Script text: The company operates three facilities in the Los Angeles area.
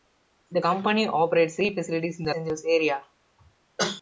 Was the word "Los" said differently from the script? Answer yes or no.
yes